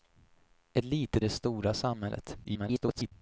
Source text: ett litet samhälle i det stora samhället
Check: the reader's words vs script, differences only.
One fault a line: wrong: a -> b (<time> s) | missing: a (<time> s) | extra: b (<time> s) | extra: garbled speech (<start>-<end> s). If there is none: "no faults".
missing: samhälle i (1.2 s)
extra: garbled speech (2.4-3.1 s)